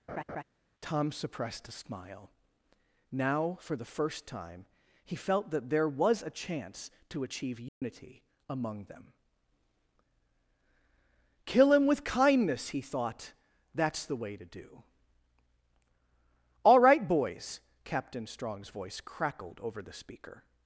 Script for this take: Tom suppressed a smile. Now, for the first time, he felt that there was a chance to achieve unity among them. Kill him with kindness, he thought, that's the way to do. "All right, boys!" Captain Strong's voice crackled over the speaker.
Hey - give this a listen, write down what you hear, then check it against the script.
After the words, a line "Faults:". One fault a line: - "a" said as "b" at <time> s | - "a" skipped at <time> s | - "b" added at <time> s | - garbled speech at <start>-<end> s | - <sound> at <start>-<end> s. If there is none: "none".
Tom suppressed a smile. Now, for the first time, he felt that there was a chance to achieve unity among them. Kill him with kindness, he thought, that's the way to do. "All right, boys!" Captain Strong's voice crackled over the speaker.
Faults:
- laugh at 0.1-0.4 s
- dropout at 7.7-7.8 s